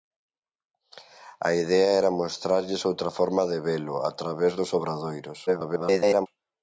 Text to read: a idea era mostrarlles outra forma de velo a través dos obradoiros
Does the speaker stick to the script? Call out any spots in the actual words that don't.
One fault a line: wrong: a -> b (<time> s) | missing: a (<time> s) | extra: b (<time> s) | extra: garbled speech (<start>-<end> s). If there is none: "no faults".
extra: garbled speech (5.5-6.3 s)